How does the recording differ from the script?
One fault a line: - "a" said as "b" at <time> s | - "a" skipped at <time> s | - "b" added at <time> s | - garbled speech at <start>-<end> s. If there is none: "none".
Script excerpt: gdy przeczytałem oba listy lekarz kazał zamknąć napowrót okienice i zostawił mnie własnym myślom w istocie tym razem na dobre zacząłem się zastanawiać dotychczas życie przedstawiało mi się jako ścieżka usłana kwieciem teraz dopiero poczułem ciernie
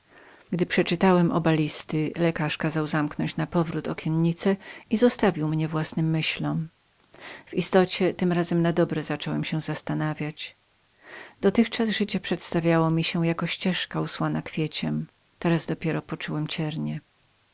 none